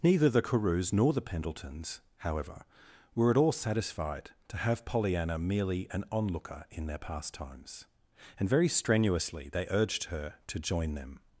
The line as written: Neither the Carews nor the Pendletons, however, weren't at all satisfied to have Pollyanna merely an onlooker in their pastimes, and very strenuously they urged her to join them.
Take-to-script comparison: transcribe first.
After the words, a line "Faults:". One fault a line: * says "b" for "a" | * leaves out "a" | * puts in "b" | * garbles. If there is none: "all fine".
Neither the Carews nor the Pendletons, however, were at all satisfied to have Pollyanna merely an onlooker in their pastimes, and very strenuously they urged her to join them.
Faults:
* says "were" for "weren't"